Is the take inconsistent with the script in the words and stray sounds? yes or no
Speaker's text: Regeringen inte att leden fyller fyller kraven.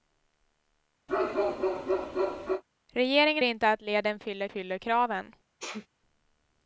yes